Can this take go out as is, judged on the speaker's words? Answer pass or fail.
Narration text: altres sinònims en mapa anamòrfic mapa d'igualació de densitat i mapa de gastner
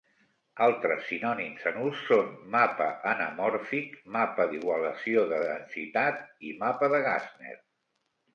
fail